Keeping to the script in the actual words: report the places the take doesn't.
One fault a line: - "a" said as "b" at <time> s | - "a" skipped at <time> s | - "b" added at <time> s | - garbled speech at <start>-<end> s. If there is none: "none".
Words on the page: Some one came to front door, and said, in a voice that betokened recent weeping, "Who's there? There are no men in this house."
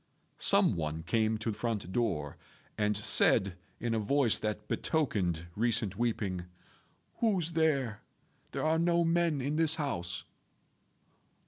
none